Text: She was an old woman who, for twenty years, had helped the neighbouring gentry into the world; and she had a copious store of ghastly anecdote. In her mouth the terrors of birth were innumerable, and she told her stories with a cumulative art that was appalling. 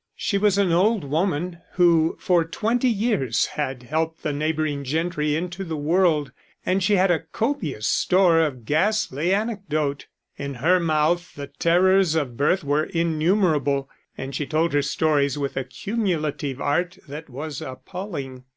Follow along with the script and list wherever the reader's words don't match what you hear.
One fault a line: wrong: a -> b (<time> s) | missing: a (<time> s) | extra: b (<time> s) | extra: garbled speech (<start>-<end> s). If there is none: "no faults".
no faults